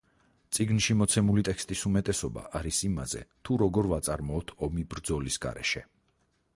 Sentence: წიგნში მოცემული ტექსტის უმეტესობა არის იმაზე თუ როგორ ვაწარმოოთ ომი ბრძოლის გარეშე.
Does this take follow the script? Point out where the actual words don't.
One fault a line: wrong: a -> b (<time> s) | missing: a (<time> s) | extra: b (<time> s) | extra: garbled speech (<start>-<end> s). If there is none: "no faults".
no faults